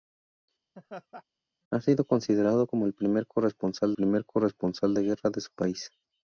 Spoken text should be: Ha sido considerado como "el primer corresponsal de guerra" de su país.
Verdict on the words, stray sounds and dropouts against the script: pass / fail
fail